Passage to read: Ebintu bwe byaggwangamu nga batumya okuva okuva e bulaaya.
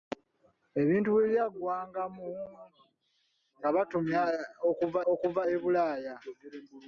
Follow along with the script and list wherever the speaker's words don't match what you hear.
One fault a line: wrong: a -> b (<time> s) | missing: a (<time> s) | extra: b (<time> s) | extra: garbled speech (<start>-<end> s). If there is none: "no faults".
no faults